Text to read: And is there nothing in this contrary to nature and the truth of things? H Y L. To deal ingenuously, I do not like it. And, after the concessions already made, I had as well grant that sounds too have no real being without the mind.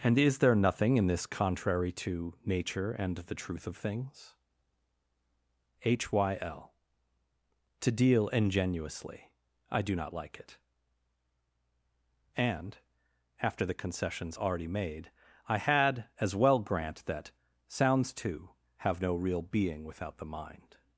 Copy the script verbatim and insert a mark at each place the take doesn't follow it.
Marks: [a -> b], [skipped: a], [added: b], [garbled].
And is there nothing in this contrary to nature and the truth of things? H Y L. To deal ingenuously, I do not like it. And, after the concessions already made, I had as well grant that sounds too have no real being without the mind.